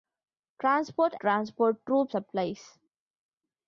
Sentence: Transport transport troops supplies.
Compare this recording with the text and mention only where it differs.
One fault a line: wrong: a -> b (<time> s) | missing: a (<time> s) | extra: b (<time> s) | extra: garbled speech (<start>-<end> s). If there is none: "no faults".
no faults